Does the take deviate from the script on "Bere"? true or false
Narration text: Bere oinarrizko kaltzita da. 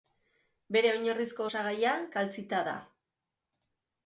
false